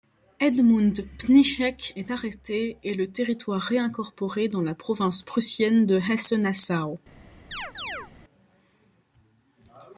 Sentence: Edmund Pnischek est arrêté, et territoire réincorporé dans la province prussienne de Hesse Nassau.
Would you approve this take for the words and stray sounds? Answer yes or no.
no